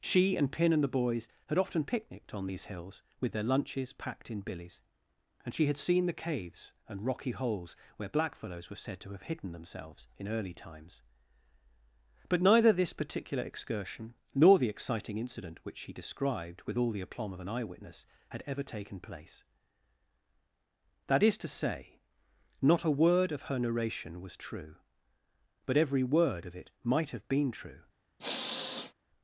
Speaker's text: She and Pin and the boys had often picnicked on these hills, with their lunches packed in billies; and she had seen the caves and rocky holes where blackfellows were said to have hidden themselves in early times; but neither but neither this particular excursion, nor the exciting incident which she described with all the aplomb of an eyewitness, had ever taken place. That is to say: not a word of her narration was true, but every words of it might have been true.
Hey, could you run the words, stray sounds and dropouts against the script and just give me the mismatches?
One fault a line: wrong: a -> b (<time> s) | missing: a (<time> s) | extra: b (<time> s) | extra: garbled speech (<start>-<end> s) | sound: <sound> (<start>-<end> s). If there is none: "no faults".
missing: but neither (12.7 s)
wrong: words -> word (26.0 s)
sound: sniff (28.2-28.9 s)